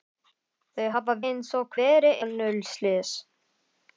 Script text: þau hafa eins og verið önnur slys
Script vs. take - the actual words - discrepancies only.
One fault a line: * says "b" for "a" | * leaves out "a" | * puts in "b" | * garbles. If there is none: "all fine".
all fine